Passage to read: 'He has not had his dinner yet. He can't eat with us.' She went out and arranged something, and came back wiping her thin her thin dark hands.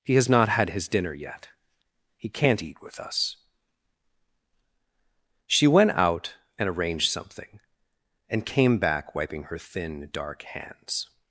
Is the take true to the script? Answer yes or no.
no